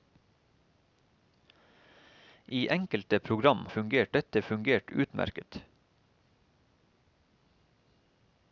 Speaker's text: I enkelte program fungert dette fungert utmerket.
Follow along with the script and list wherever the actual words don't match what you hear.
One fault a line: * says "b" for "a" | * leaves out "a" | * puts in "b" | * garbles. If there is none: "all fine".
all fine